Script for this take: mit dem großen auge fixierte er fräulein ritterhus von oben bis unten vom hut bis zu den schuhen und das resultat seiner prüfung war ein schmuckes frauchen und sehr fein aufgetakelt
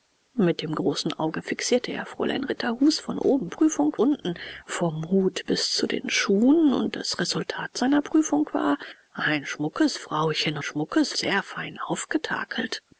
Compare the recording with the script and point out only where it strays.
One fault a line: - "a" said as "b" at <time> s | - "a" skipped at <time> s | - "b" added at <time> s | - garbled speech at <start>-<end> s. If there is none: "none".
- "bis" said as "prüfung" at 3.5 s
- "und" said as "schmuckes" at 10.6 s